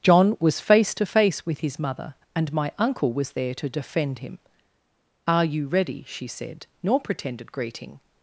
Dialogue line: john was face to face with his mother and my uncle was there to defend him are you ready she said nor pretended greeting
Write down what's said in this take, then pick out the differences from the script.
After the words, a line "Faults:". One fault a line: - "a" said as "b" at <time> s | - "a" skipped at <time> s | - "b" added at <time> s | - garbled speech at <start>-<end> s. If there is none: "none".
john was face to face with his mother and my uncle was there to defend him are you ready she said nor pretended greeting
Faults:
none